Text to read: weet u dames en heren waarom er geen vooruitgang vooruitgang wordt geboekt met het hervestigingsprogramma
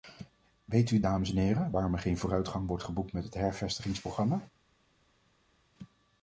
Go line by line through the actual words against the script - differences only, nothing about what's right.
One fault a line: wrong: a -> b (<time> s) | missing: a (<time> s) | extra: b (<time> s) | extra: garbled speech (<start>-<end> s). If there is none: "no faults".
missing: vooruitgang (2.7 s)